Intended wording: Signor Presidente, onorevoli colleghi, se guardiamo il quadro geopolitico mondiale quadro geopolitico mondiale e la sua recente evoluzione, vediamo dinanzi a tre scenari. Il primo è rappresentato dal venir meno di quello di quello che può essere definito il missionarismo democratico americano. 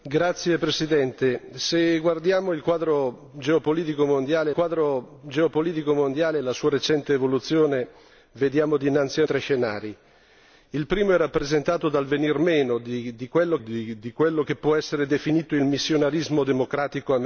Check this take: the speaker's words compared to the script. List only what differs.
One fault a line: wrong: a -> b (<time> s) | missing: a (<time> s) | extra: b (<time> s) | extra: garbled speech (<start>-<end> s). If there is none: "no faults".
no faults